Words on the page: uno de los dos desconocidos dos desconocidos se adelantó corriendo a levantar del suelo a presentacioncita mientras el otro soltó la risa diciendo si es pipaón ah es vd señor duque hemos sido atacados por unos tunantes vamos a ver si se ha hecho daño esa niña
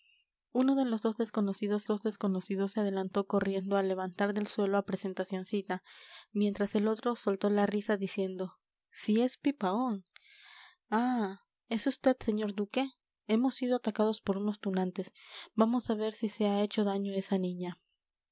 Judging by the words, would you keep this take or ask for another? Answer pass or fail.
pass